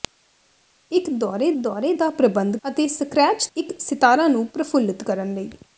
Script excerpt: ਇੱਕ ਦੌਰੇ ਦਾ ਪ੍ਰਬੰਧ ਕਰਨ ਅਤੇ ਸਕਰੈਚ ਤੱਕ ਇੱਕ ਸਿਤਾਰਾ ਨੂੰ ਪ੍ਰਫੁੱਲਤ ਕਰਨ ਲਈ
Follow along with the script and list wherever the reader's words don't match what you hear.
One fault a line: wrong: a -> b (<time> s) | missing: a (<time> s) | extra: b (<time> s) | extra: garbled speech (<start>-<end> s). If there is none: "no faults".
extra: ਦੌਰੇ (1.6 s)
missing: ਕਰਨ (2.6 s)
missing: ਤੱਕ (3.5 s)